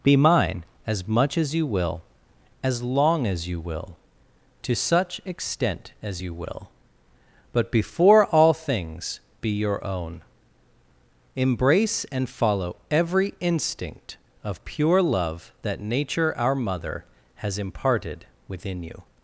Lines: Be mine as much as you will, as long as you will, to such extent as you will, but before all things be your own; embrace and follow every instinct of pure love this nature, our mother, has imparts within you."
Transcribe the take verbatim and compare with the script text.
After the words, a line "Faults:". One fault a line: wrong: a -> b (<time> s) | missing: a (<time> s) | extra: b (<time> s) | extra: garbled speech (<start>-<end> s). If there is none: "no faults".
Be mine as much as you will, as long as you will, to such extent as you will, but before all things be your own; embrace and follow every instinct of pure love that nature, our mother, has imparted within you."
Faults:
wrong: this -> that (15.6 s)
wrong: imparts -> imparted (17.6 s)